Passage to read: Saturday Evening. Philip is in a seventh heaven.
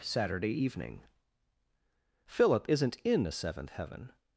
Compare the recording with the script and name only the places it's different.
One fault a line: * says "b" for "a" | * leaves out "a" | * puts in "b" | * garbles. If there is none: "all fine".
* says "isn't" for "is"